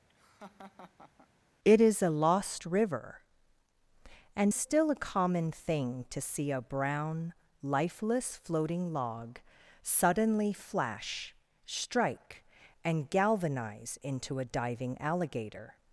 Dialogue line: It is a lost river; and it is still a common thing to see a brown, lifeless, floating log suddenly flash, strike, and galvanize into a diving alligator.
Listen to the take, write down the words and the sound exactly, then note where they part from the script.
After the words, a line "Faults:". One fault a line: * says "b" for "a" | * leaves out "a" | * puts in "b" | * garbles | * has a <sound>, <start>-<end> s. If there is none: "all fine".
It is a lost river; and still a common thing to see a brown, lifeless, floating log suddenly flash, strike, and galvanize into a diving alligator.
Faults:
* has a laugh, 0.1-1.3 s
* leaves out "it is"